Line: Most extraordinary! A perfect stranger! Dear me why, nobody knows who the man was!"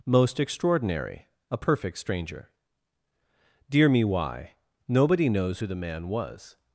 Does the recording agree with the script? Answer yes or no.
yes